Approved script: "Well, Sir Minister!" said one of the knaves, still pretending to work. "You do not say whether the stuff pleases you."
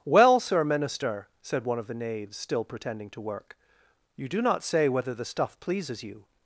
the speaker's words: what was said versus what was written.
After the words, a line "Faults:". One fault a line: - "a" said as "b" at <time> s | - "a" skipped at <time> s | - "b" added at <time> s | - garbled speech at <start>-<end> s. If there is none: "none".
"Well, Sir Minister!" said one of the knaves, still pretending to work. "You do not say whether the stuff pleases you."
Faults:
none